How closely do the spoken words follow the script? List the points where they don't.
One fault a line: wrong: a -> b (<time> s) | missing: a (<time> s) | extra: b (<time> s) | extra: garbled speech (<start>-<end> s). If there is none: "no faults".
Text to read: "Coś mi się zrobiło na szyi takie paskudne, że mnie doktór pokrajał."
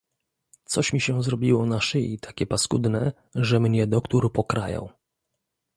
no faults